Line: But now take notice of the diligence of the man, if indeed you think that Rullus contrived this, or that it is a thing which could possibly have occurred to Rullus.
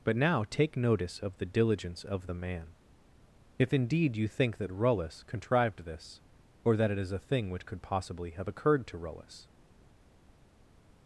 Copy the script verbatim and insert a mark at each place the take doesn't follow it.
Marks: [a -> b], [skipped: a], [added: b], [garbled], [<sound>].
But now take notice of the diligence of the man, if indeed you think that Rullus contrived this, or that it is a thing which could possibly have occurred to Rullus.